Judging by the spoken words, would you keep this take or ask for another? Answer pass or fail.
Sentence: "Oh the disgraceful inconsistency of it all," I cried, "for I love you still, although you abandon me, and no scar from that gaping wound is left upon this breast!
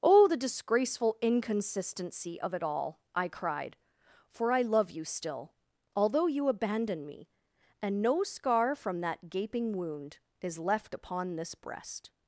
pass